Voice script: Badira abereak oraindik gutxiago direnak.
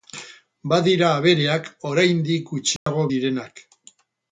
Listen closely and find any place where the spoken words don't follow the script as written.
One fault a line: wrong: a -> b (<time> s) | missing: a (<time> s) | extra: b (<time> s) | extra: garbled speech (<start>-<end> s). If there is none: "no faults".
no faults